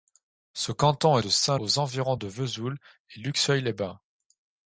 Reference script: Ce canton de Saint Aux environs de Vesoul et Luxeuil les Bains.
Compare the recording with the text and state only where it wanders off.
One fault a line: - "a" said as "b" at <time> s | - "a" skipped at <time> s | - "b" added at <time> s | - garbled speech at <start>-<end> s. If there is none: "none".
none